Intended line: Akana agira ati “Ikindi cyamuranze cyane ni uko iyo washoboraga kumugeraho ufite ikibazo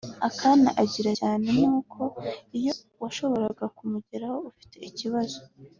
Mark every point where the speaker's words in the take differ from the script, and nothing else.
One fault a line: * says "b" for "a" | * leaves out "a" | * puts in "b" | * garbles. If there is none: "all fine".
* leaves out "ati Ikindi cyamuranze"